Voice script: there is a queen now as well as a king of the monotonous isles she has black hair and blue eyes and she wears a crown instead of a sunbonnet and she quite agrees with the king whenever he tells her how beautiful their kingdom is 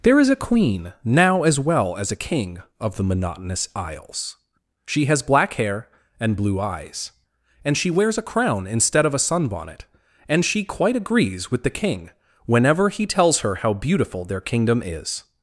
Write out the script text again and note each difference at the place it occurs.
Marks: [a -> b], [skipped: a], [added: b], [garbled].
there is a queen now as well as a king of the monotonous isles she has black hair and blue eyes and she wears a crown instead of a sunbonnet and she quite agrees with the king whenever he tells her how beautiful their kingdom is